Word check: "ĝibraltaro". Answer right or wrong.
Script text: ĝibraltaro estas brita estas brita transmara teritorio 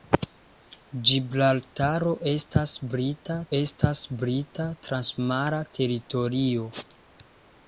right